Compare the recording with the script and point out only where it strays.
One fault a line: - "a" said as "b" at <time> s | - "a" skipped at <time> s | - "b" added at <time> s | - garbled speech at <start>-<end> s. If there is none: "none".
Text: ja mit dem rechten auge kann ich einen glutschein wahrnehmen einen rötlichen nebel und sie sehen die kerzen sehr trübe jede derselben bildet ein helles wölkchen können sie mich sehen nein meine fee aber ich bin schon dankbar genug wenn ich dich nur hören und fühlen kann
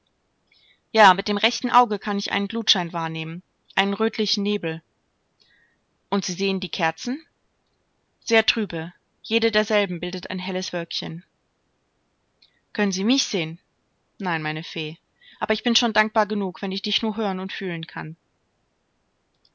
none